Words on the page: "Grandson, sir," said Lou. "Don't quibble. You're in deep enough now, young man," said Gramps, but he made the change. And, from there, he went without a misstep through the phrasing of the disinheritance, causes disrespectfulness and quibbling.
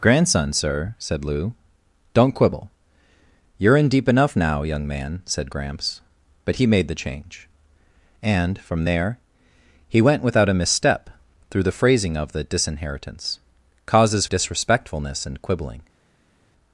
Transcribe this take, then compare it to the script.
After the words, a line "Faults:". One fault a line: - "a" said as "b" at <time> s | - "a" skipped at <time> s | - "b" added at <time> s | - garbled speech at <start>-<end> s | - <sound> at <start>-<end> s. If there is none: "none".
"Grandson, sir," said Lou. "Don't quibble. You're in deep enough now, young man," said Gramps, but he made the change. And, from there, he went without a misstep through the phrasing of the disinheritance, causes disrespectfulness and quibbling.
Faults:
none